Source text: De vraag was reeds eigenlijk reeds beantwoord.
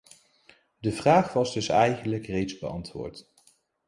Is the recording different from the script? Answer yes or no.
yes